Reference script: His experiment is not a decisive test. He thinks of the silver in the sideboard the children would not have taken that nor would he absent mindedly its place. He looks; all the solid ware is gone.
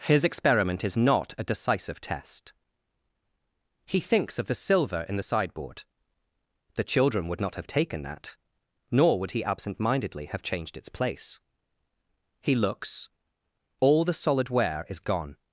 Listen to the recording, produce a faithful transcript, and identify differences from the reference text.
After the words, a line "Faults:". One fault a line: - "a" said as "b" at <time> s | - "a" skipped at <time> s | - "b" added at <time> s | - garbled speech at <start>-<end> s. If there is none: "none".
His experiment is not a decisive test. He thinks of the silver in the sideboard the children would not have taken that nor would he absent mindedly have changed its place. He looks; all the solid ware is gone.
Faults:
- "have changed" added at 10.3 s